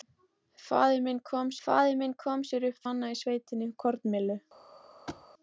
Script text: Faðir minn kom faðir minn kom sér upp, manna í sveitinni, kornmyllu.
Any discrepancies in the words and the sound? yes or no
yes